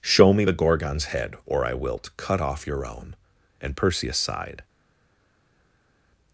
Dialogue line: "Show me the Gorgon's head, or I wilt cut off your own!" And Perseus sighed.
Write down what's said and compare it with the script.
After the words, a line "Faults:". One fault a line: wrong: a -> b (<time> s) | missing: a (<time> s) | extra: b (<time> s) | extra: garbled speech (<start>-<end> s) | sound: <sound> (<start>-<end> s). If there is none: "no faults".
"Show me the Gorgon's head, or I wilt cut off your own!" And Perseus sighed.
Faults:
no faults